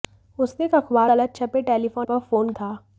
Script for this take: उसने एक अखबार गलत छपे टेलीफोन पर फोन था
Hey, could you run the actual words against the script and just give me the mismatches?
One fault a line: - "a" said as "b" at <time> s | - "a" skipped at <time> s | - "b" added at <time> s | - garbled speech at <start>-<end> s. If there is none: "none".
none